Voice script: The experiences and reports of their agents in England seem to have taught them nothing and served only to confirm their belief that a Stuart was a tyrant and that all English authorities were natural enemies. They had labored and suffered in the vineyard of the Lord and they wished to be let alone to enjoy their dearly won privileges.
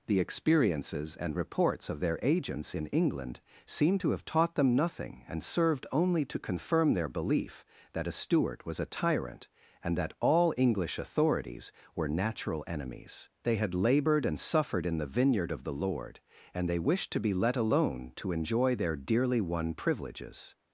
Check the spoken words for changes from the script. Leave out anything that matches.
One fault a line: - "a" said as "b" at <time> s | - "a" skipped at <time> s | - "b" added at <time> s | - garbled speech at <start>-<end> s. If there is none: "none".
none